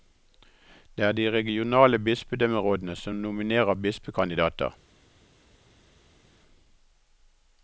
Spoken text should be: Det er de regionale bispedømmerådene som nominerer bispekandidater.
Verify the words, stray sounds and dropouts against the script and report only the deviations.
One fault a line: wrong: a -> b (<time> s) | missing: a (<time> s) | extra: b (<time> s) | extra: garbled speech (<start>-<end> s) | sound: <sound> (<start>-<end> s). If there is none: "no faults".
no faults